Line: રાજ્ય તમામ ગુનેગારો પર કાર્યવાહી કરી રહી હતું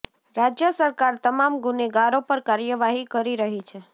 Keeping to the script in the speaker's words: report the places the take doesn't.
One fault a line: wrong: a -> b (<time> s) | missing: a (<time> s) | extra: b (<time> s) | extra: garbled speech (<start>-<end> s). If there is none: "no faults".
extra: સરકાર (0.7 s)
wrong: હતું -> છે (3.6 s)